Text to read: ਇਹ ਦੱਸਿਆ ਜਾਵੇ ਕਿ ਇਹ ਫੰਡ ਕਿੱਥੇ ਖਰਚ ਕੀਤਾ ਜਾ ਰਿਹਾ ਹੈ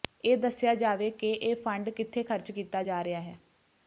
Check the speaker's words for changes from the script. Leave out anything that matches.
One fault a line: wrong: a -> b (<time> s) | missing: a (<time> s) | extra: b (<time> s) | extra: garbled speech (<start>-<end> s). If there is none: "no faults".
no faults